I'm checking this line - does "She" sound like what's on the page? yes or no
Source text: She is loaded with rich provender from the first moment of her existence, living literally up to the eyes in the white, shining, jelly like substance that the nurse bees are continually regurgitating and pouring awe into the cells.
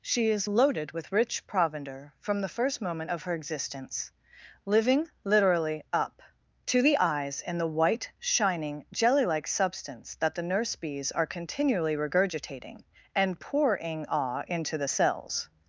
yes